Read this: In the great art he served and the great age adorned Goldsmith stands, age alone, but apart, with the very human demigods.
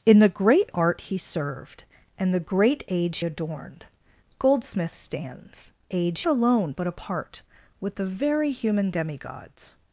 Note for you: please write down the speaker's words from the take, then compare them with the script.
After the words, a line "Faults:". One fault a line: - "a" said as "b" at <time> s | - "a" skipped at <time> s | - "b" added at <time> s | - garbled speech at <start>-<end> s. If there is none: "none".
In the great art he served and the great age adorned Goldsmith stands, age alone, but apart, with the very human demigods.
Faults:
none